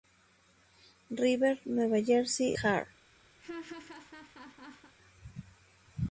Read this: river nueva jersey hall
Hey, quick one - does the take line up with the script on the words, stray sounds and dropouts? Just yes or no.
no